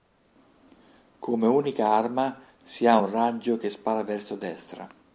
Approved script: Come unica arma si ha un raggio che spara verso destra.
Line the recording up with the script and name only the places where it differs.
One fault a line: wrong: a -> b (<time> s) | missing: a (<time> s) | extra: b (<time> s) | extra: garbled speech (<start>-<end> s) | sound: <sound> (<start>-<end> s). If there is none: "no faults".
no faults